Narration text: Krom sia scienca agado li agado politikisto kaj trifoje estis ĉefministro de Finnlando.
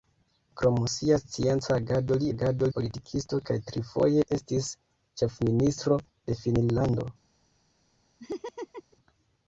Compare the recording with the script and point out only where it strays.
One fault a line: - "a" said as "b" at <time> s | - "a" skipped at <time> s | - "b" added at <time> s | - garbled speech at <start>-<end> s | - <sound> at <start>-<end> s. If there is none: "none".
- laugh at 8.2-9.0 s